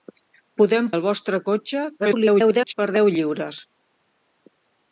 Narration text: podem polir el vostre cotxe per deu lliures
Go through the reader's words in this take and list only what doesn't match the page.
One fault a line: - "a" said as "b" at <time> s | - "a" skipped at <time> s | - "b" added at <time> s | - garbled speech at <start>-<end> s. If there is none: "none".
- "polir" skipped at 0.8 s
- garbled speech at 2.0-2.7 s